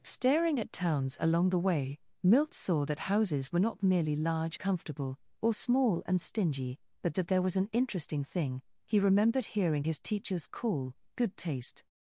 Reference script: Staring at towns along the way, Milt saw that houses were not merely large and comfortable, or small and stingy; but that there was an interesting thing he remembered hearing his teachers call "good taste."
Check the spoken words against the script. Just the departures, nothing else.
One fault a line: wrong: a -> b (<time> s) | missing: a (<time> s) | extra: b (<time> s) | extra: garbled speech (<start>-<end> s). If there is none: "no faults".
missing: and (4.6 s)